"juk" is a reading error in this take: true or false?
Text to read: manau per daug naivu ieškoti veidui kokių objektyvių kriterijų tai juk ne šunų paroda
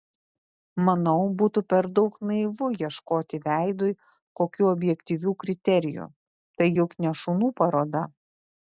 false